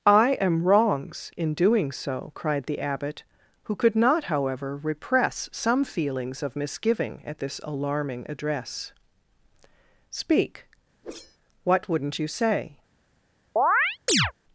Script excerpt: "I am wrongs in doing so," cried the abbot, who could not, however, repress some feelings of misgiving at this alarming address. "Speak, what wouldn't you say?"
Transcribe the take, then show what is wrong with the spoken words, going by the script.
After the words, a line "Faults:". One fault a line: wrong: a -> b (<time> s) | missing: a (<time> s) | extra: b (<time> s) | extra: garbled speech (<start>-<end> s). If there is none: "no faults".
"I am wrongs in doing so," cried the abbot, who could not, however, repress some feelings of misgiving at this alarming address. "Speak, what wouldn't you say?"
Faults:
no faults